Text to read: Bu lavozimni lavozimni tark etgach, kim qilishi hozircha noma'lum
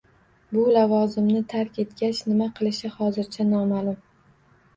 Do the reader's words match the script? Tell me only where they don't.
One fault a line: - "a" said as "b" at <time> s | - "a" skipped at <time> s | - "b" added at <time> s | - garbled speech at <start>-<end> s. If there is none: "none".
- "lavozimni" skipped at 1.4 s
- "kim" said as "nima" at 2.3 s